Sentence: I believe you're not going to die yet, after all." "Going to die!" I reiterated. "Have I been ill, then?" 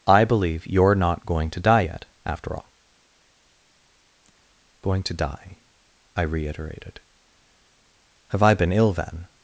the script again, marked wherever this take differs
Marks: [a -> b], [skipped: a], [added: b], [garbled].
I believe you're not going to die yet, after all." "Going to die!" I reiterated. "Have I been ill, then?"